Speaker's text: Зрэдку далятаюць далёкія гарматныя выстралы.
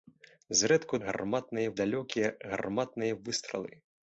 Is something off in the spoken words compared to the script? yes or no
yes